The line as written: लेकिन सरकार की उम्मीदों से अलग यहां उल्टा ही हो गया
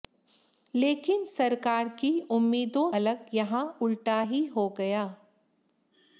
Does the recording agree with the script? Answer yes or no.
no